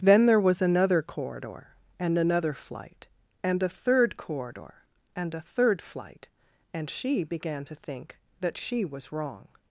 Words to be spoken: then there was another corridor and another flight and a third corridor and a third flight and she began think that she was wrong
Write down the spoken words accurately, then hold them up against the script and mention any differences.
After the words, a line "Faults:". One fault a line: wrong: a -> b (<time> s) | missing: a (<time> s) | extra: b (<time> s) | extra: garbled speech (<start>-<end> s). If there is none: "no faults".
then there was another corridor and another flight and a third corridor and a third flight and she began to think that she was wrong
Faults:
extra: to (7.6 s)